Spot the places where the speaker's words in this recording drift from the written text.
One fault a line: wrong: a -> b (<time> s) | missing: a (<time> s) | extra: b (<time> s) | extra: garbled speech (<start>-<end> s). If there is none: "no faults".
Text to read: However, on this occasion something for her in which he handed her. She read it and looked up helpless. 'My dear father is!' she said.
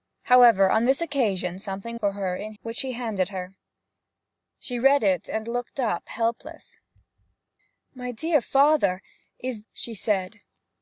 no faults